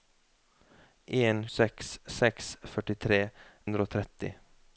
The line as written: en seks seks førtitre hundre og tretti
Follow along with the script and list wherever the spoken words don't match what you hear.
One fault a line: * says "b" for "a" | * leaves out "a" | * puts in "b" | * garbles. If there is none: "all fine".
all fine